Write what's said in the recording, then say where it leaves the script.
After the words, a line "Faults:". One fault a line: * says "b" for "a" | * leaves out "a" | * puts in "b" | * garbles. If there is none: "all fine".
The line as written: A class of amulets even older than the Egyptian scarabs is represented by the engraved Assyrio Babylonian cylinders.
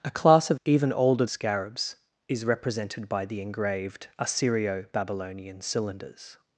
A class of even older scarabs is represented by the engraved Assyrio Babylonian cylinders.
Faults:
* leaves out "amulets"
* leaves out "than the Egyptian"